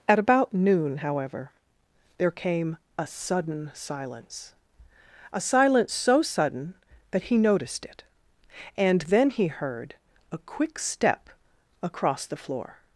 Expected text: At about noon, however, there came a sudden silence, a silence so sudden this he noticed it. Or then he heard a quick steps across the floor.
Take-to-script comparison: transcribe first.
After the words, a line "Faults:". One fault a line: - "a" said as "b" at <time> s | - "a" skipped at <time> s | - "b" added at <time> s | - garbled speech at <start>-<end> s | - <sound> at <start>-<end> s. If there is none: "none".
At about noon, however, there came a sudden silence, a silence so sudden that he noticed it. And then he heard a quick step across the floor.
Faults:
- "this" said as "that" at 7.1 s
- "Or" said as "And" at 8.8 s
- "steps" said as "step" at 10.8 s